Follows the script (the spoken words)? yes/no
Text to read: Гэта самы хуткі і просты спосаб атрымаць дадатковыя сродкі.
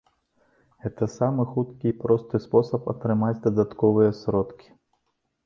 yes